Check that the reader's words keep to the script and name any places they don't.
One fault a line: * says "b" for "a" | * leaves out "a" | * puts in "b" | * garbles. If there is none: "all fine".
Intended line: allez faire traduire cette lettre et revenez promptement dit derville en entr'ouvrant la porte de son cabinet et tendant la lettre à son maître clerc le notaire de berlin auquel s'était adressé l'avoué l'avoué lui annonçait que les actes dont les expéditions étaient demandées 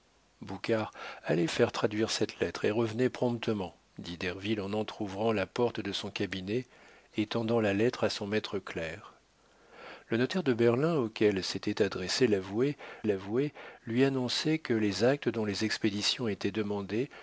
all fine